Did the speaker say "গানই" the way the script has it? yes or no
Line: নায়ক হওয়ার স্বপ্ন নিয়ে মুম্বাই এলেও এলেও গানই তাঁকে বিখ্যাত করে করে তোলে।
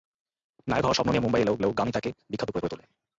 yes